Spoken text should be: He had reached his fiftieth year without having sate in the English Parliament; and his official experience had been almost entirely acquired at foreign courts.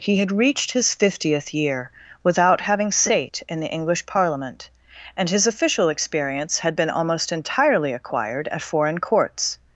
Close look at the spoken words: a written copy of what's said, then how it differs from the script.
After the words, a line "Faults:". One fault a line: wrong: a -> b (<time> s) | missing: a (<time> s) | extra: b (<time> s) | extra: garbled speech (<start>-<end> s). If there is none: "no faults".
He had reached his fiftieth year without having sate in the English Parliament; and his official experience had been almost entirely acquired at foreign courts.
Faults:
no faults